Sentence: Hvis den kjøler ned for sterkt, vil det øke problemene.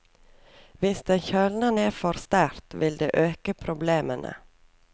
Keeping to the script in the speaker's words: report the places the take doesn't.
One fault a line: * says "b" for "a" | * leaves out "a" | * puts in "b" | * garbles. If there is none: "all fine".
all fine